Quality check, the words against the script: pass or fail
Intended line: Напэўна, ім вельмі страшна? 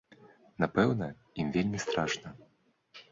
pass